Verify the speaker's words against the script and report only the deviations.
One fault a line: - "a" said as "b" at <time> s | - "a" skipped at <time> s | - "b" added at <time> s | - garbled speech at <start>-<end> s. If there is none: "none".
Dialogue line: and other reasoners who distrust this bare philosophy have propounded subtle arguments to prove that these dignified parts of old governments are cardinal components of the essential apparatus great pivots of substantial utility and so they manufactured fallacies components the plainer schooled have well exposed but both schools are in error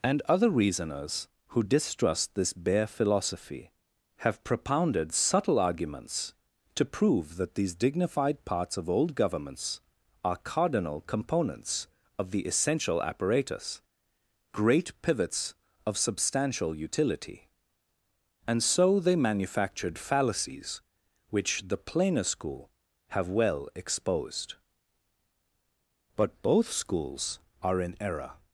- "components" said as "which" at 21.3 s
- "schooled" said as "school" at 22.2 s